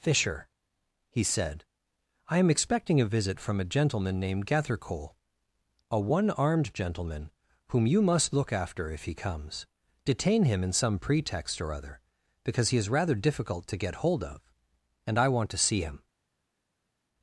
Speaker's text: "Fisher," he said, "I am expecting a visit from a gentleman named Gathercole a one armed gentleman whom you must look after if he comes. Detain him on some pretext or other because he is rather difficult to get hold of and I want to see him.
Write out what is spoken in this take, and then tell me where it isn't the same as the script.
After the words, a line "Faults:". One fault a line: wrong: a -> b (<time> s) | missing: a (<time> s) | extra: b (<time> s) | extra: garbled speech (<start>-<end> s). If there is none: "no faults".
"Fisher," he said, "I am expecting a visit from a gentleman named Gathercole a one armed gentleman whom you must look after if he comes. Detain him in some pretext or other because he is rather difficult to get hold of and I want to see him.
Faults:
wrong: on -> in (10.6 s)